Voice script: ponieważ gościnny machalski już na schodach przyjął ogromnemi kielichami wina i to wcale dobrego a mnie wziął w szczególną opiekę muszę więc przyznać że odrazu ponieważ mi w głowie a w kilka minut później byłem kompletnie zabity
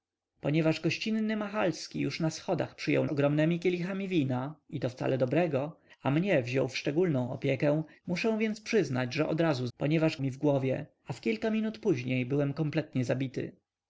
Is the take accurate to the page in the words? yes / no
yes